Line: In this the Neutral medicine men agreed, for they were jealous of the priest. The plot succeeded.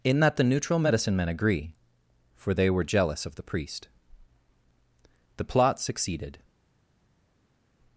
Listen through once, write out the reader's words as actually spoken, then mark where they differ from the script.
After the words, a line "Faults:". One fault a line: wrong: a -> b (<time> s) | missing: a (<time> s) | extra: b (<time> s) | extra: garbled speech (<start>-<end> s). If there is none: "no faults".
In that the Neutral medicine men agree, for they were jealous of the priest. The plot succeeded.
Faults:
wrong: this -> that (0.2 s)
wrong: agreed -> agree (1.3 s)